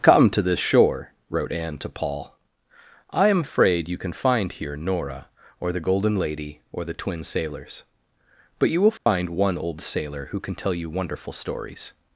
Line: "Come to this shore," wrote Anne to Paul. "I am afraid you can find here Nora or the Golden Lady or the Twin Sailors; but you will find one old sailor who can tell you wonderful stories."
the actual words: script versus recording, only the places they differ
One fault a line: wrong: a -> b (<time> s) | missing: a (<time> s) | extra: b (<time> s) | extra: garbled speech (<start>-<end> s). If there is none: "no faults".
no faults